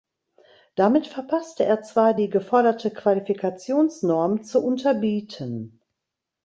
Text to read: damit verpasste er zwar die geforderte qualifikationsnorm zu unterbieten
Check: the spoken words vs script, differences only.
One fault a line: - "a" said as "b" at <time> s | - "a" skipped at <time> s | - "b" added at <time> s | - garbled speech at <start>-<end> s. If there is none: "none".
none